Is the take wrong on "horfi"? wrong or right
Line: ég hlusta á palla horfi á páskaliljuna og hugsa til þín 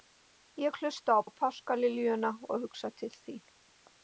wrong